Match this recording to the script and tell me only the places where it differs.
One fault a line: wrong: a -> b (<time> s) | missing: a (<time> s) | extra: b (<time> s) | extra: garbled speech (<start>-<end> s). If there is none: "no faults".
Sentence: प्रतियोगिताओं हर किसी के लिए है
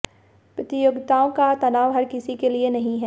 extra: का तनाव (1.3 s)
extra: नहीं (2.7 s)